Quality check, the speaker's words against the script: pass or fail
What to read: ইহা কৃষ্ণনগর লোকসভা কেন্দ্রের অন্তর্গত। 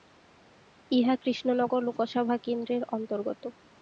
pass